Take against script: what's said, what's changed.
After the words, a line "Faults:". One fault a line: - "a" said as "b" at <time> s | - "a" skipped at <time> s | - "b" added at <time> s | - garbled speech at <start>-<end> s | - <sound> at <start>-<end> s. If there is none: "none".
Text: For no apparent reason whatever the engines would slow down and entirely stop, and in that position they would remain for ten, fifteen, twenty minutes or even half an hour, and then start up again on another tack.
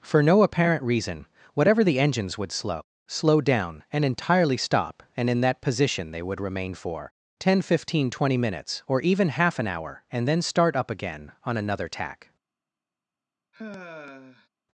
For no apparent reason whatever the engines would slow slow down and entirely stop, and in that position they would remain for ten, fifteen, twenty minutes or even half an hour, and then start up again on another tack.
Faults:
- "slow" added at 3.1 s
- sigh at 13.5-14.5 s